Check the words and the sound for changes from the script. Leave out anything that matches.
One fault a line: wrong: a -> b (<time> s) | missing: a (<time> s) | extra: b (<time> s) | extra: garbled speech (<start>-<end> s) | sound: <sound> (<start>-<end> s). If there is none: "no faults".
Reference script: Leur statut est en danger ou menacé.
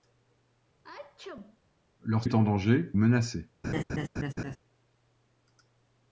sound: sneeze (0.8-1.6 s)
missing: statut (2.2 s)
missing: ou (2.9 s)
sound: laugh (3.6-4.6 s)